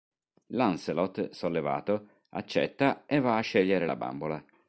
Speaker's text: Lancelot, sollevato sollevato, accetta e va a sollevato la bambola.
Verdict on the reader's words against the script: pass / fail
fail